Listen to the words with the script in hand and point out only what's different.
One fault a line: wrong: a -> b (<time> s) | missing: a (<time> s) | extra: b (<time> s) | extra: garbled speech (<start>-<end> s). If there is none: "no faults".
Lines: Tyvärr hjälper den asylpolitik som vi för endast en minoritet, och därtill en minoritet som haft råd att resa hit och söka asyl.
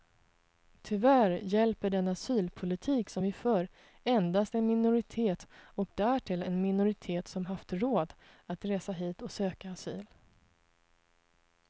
no faults